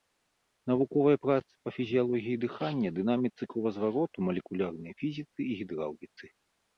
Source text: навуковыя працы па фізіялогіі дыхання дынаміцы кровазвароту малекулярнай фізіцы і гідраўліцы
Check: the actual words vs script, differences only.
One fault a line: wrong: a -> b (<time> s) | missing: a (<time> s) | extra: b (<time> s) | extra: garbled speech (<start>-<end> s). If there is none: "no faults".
no faults